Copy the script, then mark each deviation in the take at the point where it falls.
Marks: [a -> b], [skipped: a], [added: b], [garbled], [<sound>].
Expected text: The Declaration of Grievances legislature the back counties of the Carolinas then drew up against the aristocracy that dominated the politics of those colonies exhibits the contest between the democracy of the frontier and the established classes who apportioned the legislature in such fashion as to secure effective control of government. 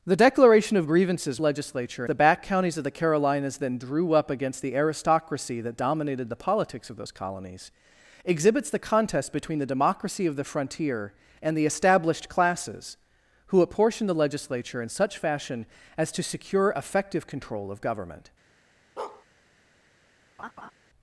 The Declaration of Grievances legislature the back counties of the Carolinas then drew up against the aristocracy that dominated the politics of those colonies exhibits the contest between the democracy of the frontier and the established classes who apportioned the legislature in such fashion as to secure effective control of government. [bark] [laugh]